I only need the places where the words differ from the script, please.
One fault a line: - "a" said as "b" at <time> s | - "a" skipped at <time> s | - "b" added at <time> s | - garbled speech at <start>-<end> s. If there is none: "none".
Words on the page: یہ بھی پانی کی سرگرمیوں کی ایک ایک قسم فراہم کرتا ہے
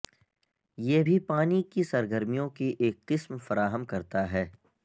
- "ایک" skipped at 3.0 s